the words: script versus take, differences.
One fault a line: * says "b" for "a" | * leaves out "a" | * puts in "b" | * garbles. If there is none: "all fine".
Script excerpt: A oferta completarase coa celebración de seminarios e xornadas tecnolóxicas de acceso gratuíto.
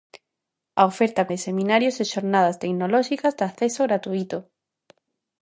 * leaves out "completarase coa celebración"